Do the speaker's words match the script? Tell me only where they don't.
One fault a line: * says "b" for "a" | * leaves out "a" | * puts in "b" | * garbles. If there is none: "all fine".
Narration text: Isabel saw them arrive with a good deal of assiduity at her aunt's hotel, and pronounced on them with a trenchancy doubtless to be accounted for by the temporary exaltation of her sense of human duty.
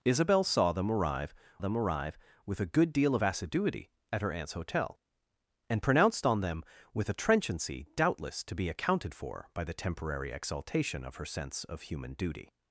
* puts in "them arrive"